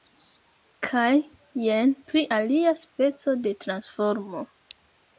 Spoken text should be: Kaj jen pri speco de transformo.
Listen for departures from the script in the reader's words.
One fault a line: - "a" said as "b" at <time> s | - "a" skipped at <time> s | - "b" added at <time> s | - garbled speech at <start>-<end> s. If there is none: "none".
- "alia" added at 2.3 s